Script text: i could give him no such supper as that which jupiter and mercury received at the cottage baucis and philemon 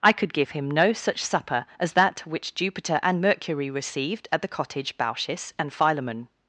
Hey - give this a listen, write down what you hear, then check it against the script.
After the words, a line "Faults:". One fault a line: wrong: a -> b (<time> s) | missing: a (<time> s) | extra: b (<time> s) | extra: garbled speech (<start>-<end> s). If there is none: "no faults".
i could give him no such supper as that which jupiter and mercury received at the cottage baucis and philemon
Faults:
no faults